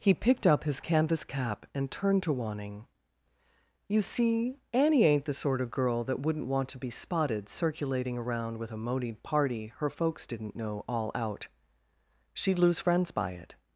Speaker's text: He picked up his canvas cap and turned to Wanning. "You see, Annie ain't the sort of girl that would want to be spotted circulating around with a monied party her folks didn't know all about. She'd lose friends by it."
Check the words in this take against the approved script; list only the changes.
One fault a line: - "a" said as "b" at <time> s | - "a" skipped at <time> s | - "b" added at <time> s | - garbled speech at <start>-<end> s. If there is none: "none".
- "would" said as "wouldn't" at 6.2 s
- "about" said as "out" at 11.1 s